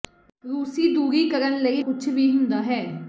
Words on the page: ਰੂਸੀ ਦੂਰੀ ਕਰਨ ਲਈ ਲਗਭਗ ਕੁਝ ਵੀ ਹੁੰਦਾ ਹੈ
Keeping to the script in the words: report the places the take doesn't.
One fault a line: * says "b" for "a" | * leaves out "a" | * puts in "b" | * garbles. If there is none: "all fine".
* leaves out "ਲਗਭਗ"